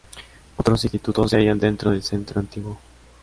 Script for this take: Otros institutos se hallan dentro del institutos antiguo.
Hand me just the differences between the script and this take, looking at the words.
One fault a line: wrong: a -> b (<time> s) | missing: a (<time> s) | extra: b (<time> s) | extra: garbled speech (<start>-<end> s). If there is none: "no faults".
wrong: institutos -> centro (2.0 s)